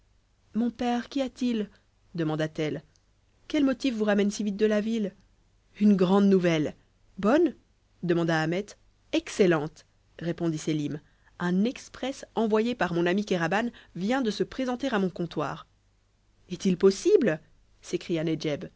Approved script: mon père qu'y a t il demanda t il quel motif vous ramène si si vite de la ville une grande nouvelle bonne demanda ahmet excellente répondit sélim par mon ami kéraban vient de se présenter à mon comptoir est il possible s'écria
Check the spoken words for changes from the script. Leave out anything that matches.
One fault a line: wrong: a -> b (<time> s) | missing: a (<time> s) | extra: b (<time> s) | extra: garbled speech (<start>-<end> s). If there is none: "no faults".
wrong: il -> elle (2.6 s)
missing: si (4.4 s)
extra: un exprès envoyé (11.4 s)